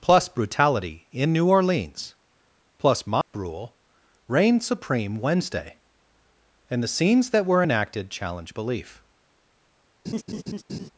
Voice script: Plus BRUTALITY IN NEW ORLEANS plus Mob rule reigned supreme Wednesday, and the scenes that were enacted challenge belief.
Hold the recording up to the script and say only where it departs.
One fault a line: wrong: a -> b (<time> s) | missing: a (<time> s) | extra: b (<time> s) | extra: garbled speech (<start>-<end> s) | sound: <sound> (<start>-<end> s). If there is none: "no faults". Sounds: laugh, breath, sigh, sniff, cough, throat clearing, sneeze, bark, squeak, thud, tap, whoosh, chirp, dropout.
sound: dropout (3.2-3.3 s)
sound: laugh (10.0-10.9 s)